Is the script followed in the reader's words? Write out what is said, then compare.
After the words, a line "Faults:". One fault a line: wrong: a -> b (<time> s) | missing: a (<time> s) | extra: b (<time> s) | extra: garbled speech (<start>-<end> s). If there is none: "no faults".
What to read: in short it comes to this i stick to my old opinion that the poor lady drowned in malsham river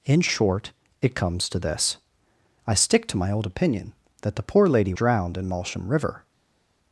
in short it comes to this i stick to my old opinion that the poor lady drowned in malsham river
Faults:
no faults